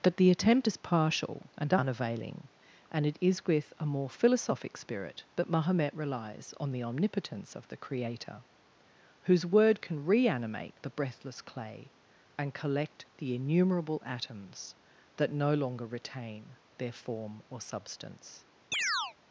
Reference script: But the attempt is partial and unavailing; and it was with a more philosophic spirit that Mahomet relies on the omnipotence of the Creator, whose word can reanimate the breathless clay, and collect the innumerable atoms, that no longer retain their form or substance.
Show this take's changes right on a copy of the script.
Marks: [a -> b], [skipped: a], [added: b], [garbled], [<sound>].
But the attempt is partial and unavailing; and it [was -> is] with a more philosophic spirit that Mahomet relies on the omnipotence of the Creator, whose word can reanimate the breathless clay, and collect the innumerable atoms, that no longer retain their form or substance. [chirp]